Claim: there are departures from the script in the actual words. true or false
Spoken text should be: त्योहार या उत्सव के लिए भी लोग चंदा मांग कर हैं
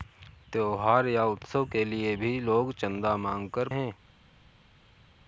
false